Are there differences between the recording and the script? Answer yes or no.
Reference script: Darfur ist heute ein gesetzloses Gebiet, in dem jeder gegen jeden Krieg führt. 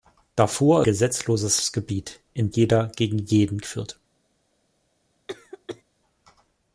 yes